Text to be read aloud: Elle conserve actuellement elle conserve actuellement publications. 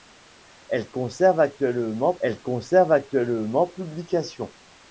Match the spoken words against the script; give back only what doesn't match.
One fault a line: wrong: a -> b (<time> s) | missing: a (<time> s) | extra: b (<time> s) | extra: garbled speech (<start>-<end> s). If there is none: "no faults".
no faults